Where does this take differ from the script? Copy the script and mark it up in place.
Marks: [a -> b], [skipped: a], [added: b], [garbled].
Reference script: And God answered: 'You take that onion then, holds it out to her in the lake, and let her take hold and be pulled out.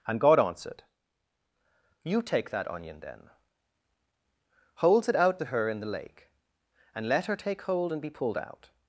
And God answered: 'You take that onion then, holds it out to her in the lake, and let her take hold and be pulled out.